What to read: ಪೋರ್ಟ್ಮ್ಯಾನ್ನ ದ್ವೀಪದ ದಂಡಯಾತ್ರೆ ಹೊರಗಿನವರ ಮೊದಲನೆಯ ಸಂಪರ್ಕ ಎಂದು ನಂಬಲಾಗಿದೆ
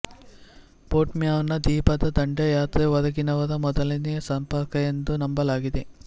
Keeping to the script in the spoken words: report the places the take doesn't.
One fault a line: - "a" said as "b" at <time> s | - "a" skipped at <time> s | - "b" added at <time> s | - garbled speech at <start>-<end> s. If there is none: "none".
none